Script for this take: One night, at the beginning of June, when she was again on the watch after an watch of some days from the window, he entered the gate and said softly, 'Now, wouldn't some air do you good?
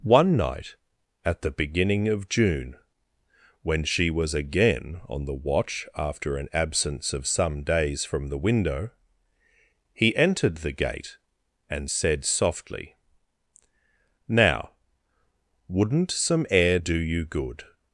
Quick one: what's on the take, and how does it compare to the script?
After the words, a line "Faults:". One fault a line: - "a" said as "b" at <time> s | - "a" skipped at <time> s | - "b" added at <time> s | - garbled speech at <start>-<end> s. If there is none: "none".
One night, at the beginning of June, when she was again on the watch after an absence of some days from the window, he entered the gate and said softly, 'Now, wouldn't some air do you good?
Faults:
- "watch" said as "absence" at 6.5 s